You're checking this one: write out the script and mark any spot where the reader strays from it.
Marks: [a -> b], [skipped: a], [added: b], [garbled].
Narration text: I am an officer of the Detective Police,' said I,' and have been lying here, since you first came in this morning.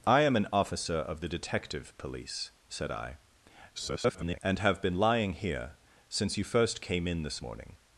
I am an officer of the Detective Police,' said I,' [garbled] and have been lying here, since you first came in this morning.